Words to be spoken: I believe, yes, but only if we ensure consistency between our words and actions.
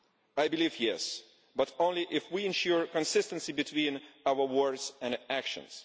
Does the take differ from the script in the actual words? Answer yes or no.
no